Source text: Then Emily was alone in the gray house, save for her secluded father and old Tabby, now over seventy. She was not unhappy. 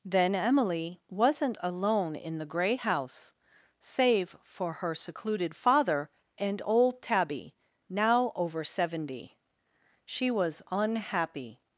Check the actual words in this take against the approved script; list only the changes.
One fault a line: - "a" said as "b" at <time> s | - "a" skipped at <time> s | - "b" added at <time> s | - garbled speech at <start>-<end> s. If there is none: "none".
- "was" said as "wasn't" at 1.1 s
- "not" skipped at 10.6 s